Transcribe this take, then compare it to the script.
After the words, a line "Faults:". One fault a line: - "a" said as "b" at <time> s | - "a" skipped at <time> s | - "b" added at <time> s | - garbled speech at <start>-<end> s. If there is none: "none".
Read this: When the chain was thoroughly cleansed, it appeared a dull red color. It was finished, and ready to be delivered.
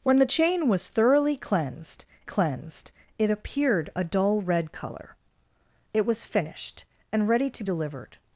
When the chain was thoroughly cleansed cleansed, it appeared a dull red color. It was finished, and ready to delivered.
Faults:
- "cleansed" added at 2.2 s
- "be" skipped at 7.6 s